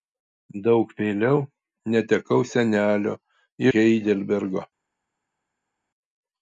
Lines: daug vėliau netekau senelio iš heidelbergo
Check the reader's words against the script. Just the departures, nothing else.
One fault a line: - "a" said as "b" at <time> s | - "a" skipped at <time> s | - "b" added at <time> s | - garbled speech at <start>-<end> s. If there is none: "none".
- "iš" skipped at 3.1 s